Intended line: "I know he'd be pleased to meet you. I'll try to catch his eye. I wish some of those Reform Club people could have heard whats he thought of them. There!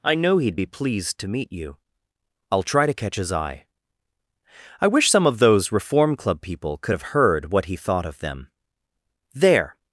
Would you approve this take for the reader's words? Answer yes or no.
no